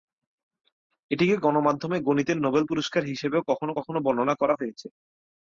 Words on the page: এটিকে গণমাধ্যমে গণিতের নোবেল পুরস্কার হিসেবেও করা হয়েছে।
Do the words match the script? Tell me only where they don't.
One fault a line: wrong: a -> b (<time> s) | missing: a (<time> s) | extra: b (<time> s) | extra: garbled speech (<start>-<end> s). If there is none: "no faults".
extra: কখনও কখনও বর্ণনা (3.5 s)